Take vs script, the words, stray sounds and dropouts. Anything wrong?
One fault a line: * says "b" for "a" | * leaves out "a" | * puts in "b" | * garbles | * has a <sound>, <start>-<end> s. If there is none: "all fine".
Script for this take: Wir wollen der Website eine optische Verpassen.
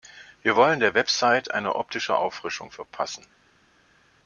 * puts in "Auffrischung"